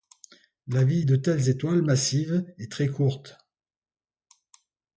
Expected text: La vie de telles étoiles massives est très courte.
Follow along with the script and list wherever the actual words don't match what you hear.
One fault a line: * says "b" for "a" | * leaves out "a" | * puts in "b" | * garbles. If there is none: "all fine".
all fine